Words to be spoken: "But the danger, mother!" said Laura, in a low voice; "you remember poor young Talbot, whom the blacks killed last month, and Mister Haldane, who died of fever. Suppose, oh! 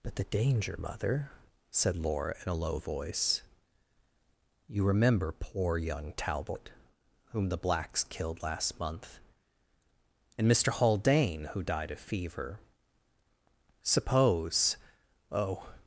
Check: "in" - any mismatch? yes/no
no